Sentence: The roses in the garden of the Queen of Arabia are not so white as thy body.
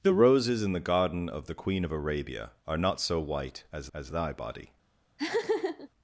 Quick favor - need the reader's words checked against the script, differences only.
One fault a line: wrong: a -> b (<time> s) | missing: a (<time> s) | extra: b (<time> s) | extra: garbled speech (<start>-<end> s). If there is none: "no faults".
extra: as (3.9 s)